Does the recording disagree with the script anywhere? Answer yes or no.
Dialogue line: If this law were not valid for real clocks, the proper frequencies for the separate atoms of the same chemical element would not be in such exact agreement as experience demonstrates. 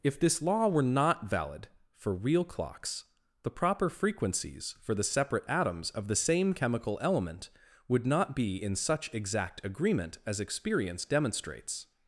no